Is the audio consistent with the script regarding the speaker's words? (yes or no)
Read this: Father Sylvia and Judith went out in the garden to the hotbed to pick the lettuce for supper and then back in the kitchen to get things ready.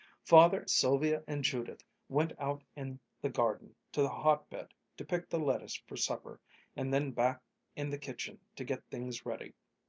yes